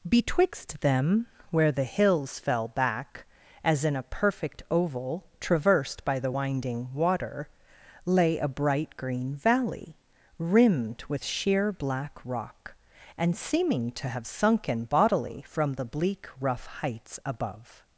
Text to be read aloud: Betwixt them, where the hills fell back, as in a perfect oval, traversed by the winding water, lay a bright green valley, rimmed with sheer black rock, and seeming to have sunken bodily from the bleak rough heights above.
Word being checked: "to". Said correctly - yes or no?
yes